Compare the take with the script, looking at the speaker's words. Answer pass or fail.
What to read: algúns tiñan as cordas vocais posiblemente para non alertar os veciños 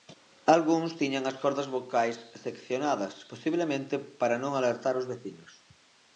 fail